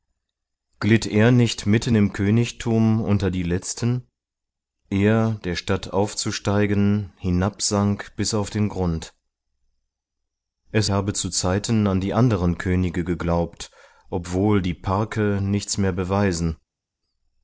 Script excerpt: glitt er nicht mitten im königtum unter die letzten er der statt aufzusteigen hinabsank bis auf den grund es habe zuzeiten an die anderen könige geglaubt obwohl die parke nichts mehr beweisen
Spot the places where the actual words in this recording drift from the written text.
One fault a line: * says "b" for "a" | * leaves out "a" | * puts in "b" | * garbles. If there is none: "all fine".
all fine